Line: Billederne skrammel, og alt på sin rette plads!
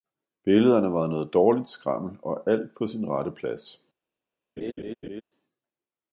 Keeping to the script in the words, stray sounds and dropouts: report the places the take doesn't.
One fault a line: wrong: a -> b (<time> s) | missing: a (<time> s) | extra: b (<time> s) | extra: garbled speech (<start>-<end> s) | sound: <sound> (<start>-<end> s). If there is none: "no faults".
extra: var noget dårligt (0.9 s)
sound: laugh (4.6-5.2 s)